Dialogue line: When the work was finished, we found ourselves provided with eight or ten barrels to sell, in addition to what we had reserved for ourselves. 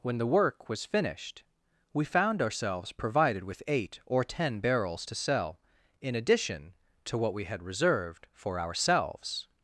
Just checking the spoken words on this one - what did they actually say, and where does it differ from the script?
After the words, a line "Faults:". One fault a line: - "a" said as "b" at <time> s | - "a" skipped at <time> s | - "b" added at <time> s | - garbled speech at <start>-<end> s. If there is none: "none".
When the work was finished, we found ourselves provided with eight or ten barrels to sell, in addition to what we had reserved for ourselves.
Faults:
none